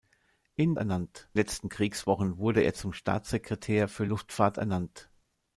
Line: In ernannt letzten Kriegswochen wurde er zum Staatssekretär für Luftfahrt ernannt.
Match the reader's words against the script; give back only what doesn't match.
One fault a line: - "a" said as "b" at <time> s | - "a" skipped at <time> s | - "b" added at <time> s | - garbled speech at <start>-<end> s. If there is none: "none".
none